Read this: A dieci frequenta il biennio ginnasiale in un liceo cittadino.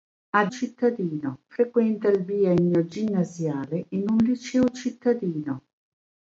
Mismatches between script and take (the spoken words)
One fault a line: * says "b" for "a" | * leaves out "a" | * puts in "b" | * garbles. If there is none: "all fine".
* says "cittadino" for "dieci"